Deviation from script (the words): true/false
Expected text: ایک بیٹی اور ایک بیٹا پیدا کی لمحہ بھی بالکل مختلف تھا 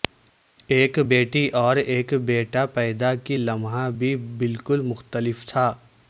false